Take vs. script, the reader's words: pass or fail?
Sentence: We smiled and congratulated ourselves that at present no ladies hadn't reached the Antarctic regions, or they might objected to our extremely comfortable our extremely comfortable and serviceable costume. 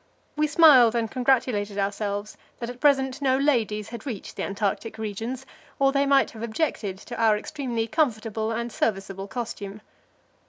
fail